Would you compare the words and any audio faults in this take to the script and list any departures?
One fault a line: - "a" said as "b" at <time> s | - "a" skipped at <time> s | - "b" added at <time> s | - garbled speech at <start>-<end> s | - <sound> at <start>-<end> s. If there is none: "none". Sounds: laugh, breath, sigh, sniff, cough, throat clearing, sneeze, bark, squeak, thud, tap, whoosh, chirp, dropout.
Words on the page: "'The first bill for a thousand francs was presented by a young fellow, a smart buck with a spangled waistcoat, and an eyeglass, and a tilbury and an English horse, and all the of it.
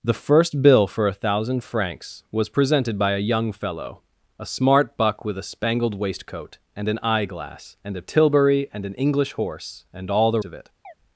- chirp at 10.8-10.9 s